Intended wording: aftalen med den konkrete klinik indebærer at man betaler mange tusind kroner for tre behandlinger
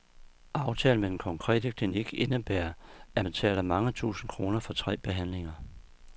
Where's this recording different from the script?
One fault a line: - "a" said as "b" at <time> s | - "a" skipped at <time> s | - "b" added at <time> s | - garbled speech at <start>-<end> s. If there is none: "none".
- "man" skipped at 3.2 s